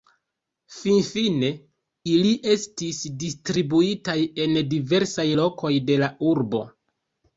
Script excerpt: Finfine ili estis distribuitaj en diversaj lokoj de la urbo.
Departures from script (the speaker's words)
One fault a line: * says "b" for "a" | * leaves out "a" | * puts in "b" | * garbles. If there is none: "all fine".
all fine